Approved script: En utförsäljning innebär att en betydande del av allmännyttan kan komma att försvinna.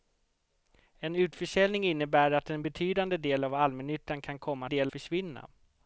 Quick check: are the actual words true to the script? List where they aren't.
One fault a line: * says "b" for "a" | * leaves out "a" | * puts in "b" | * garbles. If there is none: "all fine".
* says "del" for "att"